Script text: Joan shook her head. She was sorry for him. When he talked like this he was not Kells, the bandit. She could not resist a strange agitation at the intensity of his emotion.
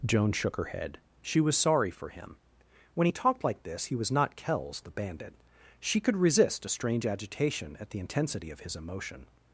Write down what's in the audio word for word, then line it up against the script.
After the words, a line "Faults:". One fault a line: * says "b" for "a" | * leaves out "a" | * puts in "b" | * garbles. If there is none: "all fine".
Joan shook her head. She was sorry for him. When he talked like this he was not Kells, the bandit. She could resist a strange agitation at the intensity of his emotion.
Faults:
* leaves out "not"